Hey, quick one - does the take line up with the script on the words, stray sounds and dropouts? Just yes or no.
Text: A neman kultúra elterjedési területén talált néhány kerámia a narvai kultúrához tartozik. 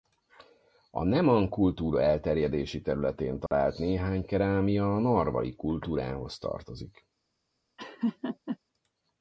no